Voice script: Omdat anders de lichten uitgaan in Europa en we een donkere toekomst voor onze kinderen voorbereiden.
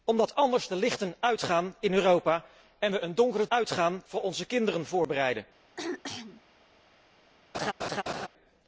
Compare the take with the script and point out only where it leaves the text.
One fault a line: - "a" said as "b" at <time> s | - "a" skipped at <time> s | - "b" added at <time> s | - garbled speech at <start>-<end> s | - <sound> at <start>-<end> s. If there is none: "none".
- "toekomst" said as "uitgaan" at 3.5 s
- throat clearing at 5.8-6.4 s
- laugh at 7.5-8.3 s